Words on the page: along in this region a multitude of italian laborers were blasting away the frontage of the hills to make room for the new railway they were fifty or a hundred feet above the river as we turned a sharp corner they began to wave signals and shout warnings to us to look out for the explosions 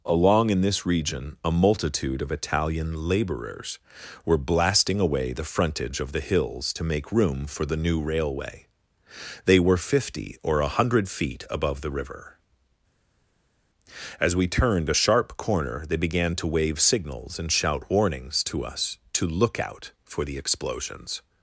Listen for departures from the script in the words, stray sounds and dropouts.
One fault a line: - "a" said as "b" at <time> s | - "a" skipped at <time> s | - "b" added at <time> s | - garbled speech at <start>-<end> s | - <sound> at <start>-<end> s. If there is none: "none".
none